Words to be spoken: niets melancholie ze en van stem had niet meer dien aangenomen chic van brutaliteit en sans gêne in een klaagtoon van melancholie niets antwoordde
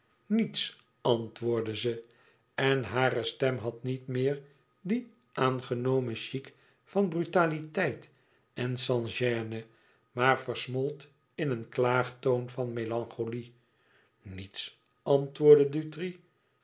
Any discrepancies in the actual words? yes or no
yes